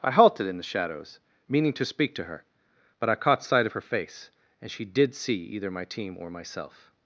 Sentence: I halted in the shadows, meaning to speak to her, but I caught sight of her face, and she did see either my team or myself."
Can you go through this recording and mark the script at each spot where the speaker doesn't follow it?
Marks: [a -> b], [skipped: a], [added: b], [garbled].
I halted in the shadows, meaning to speak to her, but I caught sight of her face, and she did see either my team or myself."